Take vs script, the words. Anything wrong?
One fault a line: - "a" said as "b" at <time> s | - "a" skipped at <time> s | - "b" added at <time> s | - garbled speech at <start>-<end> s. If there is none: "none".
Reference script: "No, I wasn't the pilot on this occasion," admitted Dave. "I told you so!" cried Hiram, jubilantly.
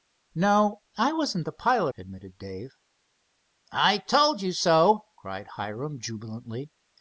- "on this occasion" skipped at 1.9 s